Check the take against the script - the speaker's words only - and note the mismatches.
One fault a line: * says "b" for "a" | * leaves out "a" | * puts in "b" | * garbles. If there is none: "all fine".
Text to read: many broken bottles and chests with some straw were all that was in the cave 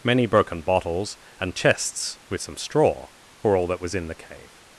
all fine